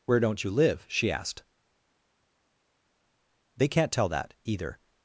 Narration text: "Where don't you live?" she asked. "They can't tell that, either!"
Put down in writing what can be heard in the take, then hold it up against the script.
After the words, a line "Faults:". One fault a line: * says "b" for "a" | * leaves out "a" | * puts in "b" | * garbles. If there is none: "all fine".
"Where don't you live?" she asked. "They can't tell that, either!"
Faults:
all fine